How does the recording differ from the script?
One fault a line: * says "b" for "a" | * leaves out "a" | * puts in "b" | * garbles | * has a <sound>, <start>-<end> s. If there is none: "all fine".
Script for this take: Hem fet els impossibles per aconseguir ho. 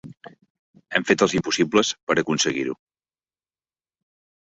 all fine